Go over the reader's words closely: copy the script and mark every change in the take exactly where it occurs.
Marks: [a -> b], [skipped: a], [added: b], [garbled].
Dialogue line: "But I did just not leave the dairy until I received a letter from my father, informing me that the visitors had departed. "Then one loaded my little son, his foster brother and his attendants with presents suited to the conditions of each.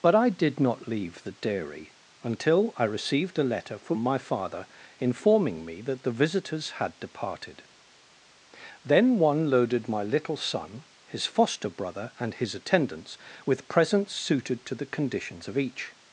"But I did [skipped: just] not leave the dairy until I received a letter from my father, informing me that the visitors had departed. "Then one loaded my little son, his foster brother and his attendants with presents suited to the conditions of each.